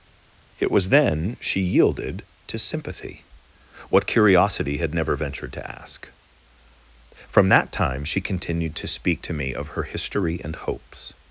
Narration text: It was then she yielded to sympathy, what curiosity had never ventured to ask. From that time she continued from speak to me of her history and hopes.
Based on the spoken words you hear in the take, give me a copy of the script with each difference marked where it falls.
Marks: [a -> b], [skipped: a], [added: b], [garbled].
It was then she yielded to sympathy, what curiosity had never ventured to ask. From that time she continued [from -> to] speak to me of her history and hopes.